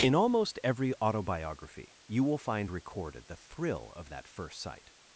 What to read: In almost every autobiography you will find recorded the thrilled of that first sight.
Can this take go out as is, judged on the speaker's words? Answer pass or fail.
fail